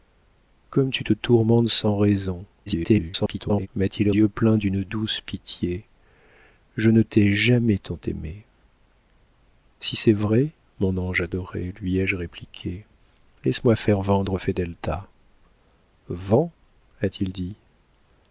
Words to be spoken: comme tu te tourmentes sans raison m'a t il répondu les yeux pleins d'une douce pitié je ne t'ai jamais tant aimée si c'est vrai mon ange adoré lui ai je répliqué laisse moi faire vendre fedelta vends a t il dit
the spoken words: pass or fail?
fail